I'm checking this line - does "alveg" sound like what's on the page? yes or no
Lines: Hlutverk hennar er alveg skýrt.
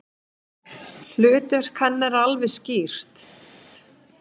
yes